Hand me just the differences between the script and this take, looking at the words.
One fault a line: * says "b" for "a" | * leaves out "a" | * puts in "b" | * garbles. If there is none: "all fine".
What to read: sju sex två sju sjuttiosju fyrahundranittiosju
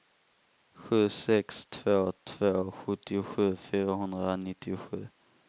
* says "två" for "sju"